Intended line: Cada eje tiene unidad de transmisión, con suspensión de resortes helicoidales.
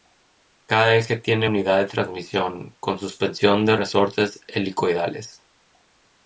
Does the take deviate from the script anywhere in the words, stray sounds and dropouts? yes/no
no